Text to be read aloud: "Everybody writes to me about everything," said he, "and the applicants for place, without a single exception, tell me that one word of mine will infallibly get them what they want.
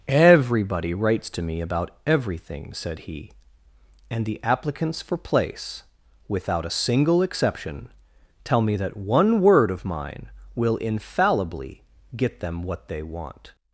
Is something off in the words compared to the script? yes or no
no